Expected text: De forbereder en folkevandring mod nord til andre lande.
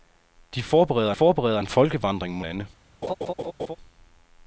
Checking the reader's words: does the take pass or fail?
fail